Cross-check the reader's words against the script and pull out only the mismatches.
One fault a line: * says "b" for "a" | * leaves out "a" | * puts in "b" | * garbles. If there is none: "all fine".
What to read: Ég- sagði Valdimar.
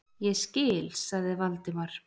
* puts in "skil"